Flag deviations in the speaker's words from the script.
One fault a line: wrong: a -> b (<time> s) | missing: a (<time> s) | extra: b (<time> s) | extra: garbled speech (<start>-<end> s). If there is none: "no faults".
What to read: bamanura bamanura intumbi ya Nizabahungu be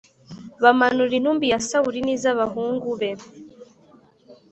missing: bamanura (1.1 s)
extra: Sawuli (1.7 s)